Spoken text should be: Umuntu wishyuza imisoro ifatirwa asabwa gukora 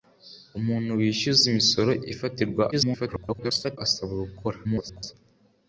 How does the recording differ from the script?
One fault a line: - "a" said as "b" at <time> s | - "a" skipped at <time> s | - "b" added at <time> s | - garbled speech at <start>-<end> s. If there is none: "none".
- garbled speech at 2.7-3.8 s
- garbled speech at 4.6-5.1 s